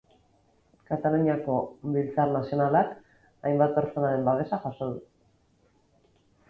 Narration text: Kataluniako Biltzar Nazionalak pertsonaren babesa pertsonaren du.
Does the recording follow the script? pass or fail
fail